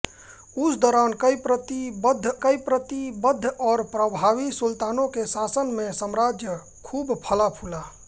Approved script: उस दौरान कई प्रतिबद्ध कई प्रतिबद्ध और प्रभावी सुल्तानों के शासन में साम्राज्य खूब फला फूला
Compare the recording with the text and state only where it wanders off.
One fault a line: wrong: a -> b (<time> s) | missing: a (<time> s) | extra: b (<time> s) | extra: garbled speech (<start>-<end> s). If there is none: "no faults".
no faults